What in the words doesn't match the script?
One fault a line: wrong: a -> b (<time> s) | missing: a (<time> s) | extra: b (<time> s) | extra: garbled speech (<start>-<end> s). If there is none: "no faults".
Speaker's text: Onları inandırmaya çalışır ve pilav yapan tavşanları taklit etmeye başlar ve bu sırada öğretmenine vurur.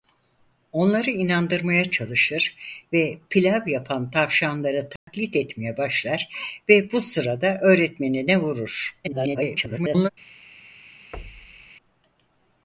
extra: garbled speech (9.0-10.1 s)